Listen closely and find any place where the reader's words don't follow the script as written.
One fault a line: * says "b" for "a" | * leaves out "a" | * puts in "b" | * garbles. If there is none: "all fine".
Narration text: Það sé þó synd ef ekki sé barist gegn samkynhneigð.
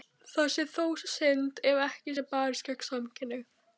all fine